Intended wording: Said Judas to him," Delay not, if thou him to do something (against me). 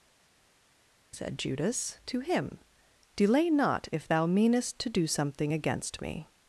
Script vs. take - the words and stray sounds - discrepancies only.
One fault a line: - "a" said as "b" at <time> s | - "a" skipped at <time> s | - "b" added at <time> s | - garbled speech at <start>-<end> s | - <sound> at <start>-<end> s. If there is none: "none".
- "him" said as "meanest" at 4.3 s